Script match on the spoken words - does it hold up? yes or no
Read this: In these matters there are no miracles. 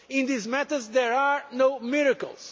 yes